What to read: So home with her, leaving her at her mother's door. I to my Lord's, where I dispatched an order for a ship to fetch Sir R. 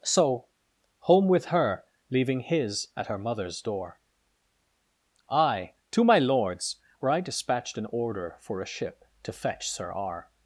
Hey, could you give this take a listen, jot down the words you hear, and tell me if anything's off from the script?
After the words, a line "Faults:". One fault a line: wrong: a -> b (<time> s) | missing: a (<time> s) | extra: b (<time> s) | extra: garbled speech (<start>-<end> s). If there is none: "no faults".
So home with her, leaving his at her mother's door. I to my Lord's, where I dispatched an order for a ship to fetch Sir R.
Faults:
wrong: her -> his (2.4 s)